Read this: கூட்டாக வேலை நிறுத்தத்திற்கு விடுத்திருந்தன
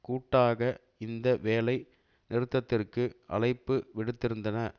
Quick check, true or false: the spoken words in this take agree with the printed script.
false